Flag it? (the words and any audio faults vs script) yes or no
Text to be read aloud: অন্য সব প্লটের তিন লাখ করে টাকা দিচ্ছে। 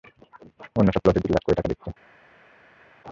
no